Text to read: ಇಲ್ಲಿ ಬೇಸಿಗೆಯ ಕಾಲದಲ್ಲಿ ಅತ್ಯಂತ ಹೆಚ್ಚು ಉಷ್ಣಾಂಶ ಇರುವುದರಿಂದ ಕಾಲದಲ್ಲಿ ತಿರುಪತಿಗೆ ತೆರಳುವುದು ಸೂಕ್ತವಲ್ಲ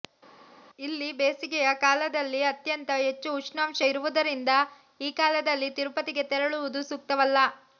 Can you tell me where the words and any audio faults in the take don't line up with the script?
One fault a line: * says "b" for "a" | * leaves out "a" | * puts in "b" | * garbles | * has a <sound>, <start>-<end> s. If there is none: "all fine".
* puts in "ಈ"